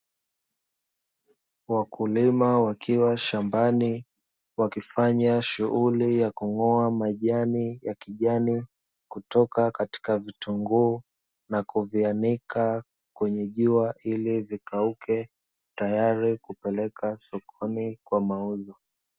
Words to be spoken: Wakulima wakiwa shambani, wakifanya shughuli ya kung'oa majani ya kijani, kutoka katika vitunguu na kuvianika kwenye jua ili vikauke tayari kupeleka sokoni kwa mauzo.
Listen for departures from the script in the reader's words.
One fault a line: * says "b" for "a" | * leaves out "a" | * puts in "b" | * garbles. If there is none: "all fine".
all fine